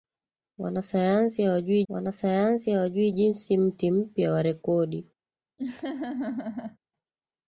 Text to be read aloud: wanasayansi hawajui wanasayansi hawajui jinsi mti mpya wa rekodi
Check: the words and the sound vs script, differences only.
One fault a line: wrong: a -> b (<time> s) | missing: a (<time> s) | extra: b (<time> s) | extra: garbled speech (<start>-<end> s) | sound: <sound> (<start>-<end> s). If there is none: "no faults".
sound: laugh (5.6-6.8 s)